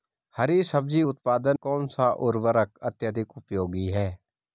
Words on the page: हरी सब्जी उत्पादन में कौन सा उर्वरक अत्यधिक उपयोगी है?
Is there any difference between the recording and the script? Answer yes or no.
yes